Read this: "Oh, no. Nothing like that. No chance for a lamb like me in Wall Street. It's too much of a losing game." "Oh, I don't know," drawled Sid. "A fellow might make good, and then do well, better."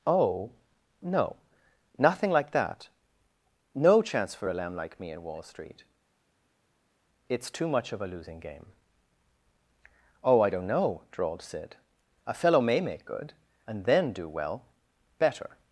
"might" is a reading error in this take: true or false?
true